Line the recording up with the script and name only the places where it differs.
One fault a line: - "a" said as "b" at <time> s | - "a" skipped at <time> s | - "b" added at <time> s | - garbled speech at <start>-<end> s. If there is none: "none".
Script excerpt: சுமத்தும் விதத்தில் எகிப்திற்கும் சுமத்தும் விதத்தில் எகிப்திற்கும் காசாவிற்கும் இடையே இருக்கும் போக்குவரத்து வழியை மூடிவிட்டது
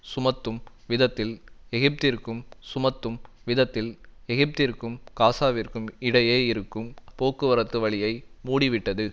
none